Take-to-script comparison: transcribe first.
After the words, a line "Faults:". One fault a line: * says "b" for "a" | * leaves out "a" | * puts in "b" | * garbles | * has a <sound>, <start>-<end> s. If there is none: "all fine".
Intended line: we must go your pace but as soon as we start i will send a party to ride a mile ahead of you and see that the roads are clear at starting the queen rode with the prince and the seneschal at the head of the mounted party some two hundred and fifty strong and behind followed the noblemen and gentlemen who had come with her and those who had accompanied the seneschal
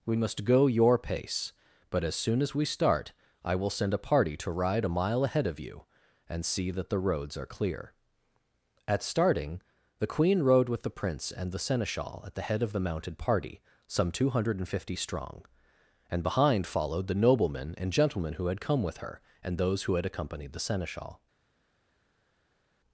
we must go your pace but as soon as we start i will send a party to ride a mile ahead of you and see that the roads are clear at starting the queen rode with the prince and the seneschal at the head of the mounted party some two hundred and fifty strong and behind followed the noblemen and gentlemen who had come with her and those who had accompanied the seneschal
Faults:
all fine